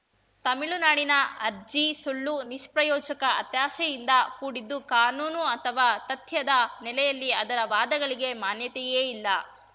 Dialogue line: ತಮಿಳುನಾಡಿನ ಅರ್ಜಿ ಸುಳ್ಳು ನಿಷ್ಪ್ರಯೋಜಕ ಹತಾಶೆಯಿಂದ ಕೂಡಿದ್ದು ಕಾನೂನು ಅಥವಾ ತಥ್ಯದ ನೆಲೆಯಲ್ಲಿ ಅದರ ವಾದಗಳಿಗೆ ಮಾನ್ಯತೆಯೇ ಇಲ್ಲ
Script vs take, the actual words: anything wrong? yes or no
no